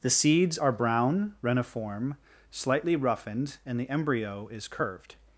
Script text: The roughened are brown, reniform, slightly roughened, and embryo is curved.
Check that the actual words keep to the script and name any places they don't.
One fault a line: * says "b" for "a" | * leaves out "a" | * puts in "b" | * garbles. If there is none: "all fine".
* says "seeds" for "roughened"
* puts in "the"